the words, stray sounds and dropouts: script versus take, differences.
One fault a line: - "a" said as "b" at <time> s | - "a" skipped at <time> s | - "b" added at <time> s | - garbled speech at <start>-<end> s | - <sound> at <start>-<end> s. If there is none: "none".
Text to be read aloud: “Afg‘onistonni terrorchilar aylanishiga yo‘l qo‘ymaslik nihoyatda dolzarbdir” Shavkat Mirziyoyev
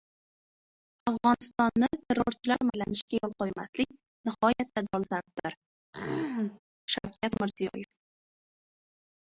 - throat clearing at 5.9-6.6 s